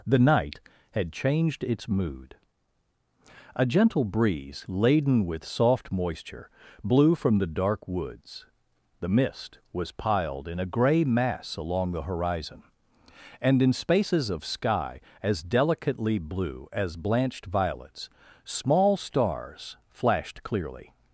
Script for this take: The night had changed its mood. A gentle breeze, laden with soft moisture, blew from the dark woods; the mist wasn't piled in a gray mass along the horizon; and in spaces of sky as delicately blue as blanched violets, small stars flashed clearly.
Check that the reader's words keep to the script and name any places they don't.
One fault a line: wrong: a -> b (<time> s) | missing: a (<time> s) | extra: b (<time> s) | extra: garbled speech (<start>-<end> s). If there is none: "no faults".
wrong: wasn't -> was (9.7 s)